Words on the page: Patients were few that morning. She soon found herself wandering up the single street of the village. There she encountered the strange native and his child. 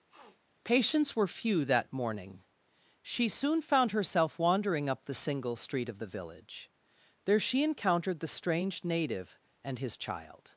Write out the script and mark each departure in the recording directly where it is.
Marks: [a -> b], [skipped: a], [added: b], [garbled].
Patients were few that morning. She soon found herself wandering up the single street of the village. There she encountered the strange native and his child.